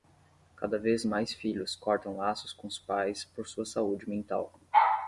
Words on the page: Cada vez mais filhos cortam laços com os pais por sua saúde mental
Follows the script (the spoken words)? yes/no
yes